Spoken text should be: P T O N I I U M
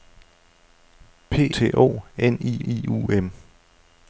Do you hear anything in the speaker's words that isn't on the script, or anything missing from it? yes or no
no